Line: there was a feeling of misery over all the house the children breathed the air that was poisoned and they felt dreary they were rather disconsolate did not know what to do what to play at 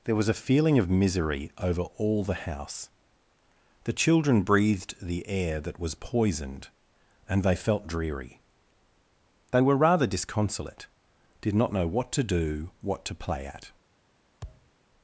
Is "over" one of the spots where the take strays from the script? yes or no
no